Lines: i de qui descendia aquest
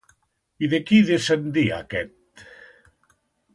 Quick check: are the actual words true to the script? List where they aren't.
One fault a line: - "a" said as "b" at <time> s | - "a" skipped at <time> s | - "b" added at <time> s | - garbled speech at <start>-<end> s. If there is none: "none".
none